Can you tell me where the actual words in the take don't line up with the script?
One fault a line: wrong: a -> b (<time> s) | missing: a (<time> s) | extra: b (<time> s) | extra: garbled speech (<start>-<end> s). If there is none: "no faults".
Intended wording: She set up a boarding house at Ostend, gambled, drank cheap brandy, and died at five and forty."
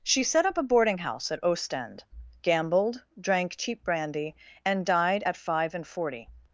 no faults